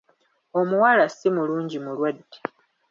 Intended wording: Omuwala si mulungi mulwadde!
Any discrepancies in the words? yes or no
no